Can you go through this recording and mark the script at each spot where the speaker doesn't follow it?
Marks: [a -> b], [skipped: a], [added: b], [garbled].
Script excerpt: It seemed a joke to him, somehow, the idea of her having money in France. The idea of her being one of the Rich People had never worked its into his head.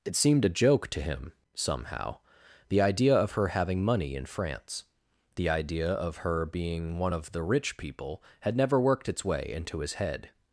It seemed a joke to him, somehow, the idea of her having money in France. The idea of her being one of the Rich People had never worked its [added: way] into his head.